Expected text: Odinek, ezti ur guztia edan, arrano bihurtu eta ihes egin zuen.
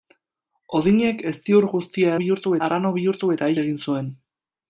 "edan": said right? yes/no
no